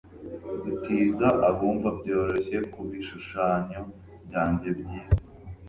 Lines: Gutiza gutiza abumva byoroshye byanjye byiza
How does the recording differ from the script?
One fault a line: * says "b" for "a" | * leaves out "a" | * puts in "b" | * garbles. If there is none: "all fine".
* leaves out "gutiza"
* puts in "kubishushanyo"